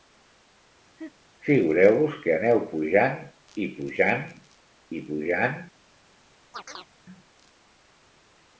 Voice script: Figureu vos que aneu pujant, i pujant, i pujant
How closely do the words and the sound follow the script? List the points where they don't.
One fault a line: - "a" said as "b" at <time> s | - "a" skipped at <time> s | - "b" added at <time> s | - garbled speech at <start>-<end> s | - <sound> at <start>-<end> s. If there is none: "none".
- laugh at 1.0-1.1 s
- chirp at 6.5-6.9 s